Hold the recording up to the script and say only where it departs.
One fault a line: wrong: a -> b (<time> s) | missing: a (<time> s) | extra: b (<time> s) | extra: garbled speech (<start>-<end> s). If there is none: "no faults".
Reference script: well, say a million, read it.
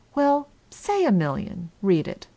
no faults